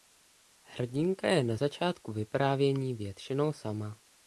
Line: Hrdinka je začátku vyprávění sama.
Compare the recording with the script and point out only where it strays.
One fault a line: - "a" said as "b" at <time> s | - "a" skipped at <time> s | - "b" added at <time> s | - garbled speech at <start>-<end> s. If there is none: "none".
- "na" added at 1.4 s
- "většinou" added at 2.9 s